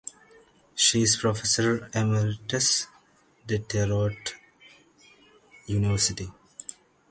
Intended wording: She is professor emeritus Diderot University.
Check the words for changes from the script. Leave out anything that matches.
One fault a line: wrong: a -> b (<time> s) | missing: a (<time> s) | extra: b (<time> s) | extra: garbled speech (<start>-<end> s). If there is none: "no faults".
no faults